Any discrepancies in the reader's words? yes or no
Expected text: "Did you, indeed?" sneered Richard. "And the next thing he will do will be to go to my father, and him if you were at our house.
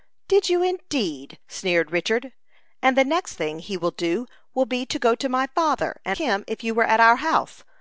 no